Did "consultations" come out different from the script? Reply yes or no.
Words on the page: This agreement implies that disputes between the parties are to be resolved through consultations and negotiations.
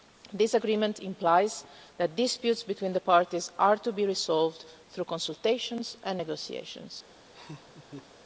no